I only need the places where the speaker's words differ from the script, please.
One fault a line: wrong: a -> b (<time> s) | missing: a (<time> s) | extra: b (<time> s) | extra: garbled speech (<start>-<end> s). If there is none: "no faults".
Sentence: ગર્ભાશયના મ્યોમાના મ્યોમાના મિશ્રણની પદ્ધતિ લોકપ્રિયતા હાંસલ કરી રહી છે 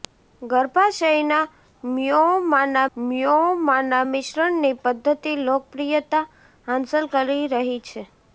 no faults